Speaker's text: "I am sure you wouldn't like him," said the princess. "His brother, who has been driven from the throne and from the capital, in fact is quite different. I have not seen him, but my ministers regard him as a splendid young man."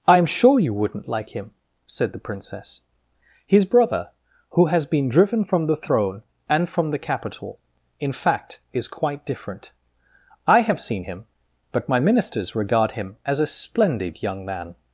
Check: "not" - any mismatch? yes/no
yes